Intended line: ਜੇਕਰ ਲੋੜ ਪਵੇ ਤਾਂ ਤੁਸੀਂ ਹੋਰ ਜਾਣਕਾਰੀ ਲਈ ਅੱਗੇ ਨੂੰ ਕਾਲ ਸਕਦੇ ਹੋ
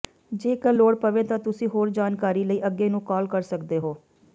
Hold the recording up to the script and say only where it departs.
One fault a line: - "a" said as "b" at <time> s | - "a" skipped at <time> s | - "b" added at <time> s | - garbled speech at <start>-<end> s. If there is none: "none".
- "ਕਰ" added at 3.3 s